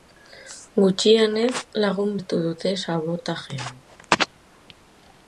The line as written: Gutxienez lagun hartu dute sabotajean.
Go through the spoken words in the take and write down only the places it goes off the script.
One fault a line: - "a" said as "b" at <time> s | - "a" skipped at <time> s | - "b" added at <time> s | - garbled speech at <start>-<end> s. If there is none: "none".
none